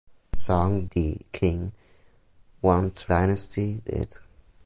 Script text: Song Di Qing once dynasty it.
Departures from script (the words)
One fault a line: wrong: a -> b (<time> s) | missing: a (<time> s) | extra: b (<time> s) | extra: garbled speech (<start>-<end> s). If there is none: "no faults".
no faults